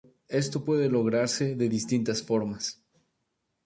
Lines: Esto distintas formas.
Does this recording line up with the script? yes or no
no